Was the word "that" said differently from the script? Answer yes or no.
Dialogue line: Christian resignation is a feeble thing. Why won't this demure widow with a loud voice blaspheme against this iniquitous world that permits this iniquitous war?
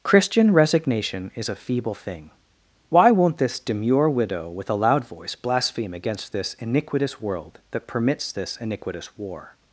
no